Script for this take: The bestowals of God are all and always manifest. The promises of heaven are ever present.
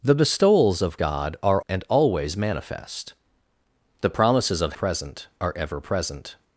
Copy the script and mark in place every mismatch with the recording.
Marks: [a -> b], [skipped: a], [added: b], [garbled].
The bestowals of God are [skipped: all] and always manifest. The promises of [heaven -> present] are ever present.